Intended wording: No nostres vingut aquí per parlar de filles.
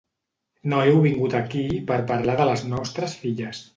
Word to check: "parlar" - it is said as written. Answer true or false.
true